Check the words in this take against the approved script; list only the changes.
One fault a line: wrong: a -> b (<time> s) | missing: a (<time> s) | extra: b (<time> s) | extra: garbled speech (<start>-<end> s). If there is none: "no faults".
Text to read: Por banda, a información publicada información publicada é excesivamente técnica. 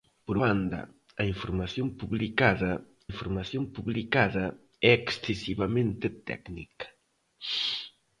no faults